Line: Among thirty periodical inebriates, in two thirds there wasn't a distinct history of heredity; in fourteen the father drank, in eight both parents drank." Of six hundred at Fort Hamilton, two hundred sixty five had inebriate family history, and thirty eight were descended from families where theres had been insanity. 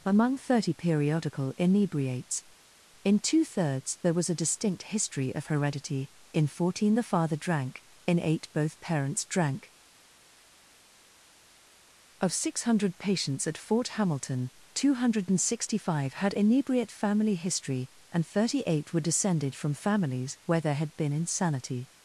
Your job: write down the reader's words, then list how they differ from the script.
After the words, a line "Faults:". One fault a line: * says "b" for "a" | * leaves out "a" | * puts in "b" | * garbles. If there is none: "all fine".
Among thirty periodical inebriates, in two thirds there was a distinct history of heredity; in fourteen the father drank, in eight both parents drank." Of six hundred patients at Fort Hamilton, two hundred sixty five had inebriate family history, and thirty eight were descended from families where there had been insanity.
Faults:
* says "was" for "wasn't"
* puts in "patients"
* says "there" for "theres"